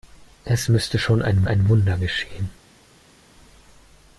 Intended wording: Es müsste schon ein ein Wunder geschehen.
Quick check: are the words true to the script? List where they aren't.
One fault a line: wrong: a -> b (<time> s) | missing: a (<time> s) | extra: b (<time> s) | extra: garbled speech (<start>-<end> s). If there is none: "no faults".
no faults